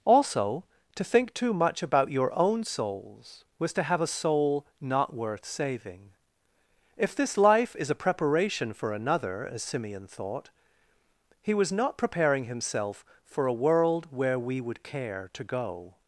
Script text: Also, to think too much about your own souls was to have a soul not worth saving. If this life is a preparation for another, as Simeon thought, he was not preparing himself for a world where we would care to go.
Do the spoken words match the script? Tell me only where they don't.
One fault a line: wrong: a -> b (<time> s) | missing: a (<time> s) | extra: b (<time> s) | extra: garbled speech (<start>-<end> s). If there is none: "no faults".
no faults